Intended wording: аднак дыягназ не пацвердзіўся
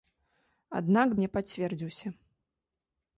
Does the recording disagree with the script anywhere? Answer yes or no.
yes